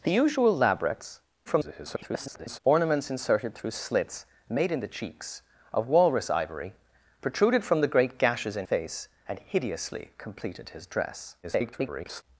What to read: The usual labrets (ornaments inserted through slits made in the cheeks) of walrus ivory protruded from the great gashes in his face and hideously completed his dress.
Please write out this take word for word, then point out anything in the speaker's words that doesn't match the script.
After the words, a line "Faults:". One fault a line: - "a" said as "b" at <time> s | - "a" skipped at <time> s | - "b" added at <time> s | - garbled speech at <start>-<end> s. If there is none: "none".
The usual labrets [garbled] (ornaments inserted through slits made in the cheeks) of walrus ivory protruded from the great gashes in face and hideously completed his dress. [garbled]
Faults:
- garbled speech at 1.5-2.6 s
- "his" skipped at 8.7 s
- garbled speech at 11.4-12.2 s